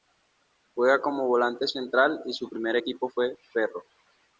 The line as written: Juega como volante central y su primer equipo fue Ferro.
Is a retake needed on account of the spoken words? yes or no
no